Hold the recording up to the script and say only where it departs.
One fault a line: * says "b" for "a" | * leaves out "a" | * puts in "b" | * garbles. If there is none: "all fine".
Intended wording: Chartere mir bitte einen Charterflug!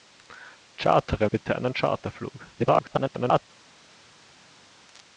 * leaves out "mir"
* garbles